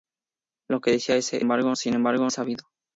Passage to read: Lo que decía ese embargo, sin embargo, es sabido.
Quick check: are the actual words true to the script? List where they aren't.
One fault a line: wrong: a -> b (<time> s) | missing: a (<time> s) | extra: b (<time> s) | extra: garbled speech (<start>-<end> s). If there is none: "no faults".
no faults